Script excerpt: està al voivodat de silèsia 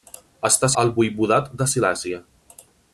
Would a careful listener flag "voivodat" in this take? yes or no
no